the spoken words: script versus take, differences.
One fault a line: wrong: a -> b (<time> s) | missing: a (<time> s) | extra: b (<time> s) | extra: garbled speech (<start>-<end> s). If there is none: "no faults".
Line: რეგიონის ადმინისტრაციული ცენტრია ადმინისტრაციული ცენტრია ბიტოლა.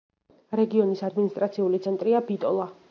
missing: ადმინისტრაციული ცენტრია (2.3 s)